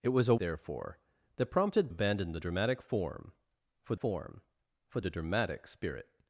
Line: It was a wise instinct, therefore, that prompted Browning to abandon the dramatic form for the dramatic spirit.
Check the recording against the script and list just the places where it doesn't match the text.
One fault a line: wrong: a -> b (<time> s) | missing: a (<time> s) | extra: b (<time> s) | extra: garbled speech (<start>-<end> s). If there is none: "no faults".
missing: wise instinct (0.3 s)
missing: Browning to (1.9 s)
extra: form for (3.9 s)